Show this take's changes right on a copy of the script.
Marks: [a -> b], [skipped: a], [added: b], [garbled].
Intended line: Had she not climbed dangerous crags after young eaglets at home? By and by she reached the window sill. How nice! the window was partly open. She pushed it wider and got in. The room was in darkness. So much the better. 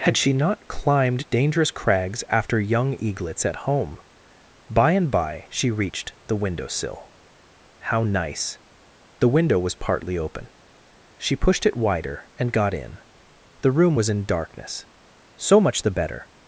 Had she not climbed dangerous crags after young eaglets at home? By and by she reached the window sill. How nice! the window was partly open. She pushed it wider and got in. The room was in darkness. So much the better.